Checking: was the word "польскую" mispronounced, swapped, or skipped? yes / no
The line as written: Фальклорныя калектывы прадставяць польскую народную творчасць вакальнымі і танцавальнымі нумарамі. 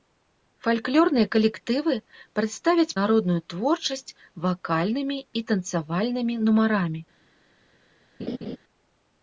yes